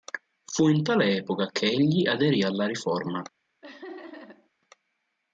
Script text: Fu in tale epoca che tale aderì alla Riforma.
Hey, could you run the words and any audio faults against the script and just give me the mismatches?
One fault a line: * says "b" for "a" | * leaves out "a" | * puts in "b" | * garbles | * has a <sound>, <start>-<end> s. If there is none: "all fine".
* says "egli" for "tale"
* has a laugh, 3.6-4.5 s